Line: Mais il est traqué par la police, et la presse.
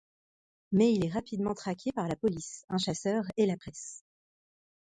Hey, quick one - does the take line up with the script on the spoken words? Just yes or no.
no